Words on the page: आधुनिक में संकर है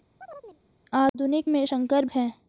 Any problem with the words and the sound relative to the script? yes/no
yes